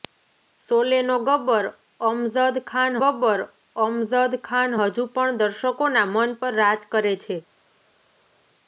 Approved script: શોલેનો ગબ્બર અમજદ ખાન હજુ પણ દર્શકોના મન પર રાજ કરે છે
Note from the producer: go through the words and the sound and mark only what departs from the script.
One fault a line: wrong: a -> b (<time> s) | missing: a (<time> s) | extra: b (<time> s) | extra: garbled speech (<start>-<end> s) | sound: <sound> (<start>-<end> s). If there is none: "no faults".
extra: ગબ્બર અમજદ ખાન (3.0 s)